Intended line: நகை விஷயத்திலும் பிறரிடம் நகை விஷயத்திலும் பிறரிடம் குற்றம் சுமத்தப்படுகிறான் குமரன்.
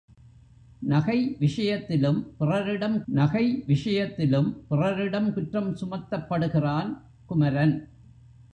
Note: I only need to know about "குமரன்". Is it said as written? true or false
true